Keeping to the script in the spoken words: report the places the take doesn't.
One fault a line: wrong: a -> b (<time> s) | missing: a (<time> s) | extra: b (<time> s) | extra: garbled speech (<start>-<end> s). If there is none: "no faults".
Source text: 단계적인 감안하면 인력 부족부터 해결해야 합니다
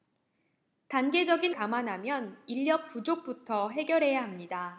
no faults